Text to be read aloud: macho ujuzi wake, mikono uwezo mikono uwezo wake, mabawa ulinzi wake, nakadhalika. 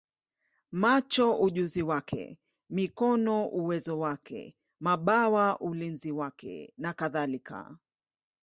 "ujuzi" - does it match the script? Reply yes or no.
yes